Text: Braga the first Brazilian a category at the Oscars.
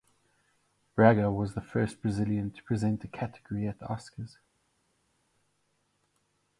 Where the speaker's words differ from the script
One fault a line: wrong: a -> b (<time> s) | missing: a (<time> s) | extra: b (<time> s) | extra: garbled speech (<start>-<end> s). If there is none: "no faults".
extra: was (1.3 s)
extra: to present (2.5 s)